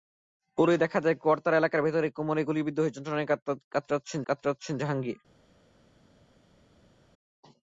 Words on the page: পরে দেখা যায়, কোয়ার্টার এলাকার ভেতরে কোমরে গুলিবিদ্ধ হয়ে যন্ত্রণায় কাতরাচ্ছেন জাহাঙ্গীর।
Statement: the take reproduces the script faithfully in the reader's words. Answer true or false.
false